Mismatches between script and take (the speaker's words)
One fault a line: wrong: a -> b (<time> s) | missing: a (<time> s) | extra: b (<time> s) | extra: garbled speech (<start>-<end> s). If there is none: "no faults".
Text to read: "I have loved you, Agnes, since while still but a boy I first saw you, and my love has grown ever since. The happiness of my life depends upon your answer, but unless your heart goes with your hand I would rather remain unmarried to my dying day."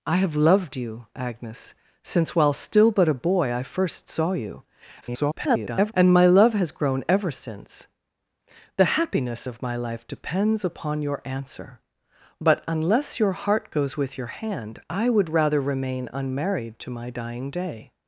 extra: garbled speech (5.0-5.9 s)